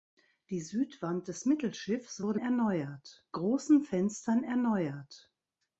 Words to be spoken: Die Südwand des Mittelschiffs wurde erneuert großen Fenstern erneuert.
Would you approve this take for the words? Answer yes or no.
yes